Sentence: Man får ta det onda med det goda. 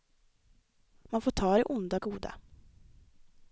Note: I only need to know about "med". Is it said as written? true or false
false